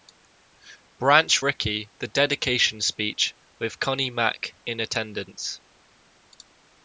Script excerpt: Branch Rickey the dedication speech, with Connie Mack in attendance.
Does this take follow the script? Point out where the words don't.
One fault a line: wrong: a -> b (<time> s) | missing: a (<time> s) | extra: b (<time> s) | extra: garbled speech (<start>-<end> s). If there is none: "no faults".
no faults